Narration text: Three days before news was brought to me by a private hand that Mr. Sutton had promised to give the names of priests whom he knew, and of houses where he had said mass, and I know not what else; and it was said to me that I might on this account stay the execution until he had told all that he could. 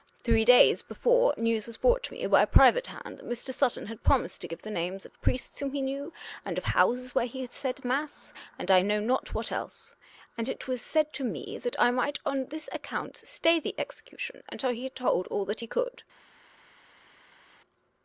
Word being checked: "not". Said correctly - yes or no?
yes